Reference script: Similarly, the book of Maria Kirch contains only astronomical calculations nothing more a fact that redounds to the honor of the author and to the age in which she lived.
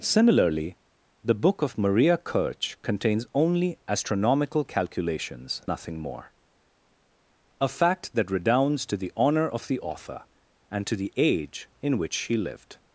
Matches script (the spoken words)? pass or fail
pass